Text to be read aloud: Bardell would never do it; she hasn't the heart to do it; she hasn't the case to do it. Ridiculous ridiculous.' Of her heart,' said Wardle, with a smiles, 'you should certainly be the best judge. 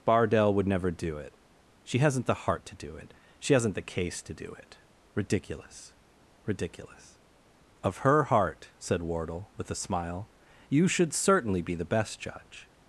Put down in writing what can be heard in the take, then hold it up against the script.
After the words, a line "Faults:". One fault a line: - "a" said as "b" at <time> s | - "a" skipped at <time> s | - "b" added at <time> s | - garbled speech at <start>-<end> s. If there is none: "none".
Bardell would never do it; she hasn't the heart to do it; she hasn't the case to do it. Ridiculous ridiculous.' Of her heart,' said Wardle, with a smile, 'you should certainly be the best judge.
Faults:
- "smiles" said as "smile" at 9.8 s